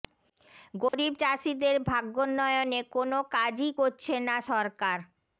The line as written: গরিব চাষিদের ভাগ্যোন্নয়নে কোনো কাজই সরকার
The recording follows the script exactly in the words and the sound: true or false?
false